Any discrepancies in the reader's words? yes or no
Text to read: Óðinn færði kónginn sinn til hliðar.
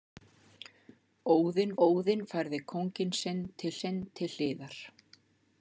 yes